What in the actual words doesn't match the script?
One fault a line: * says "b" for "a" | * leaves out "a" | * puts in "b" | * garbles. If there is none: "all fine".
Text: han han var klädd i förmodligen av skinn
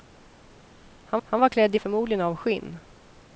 all fine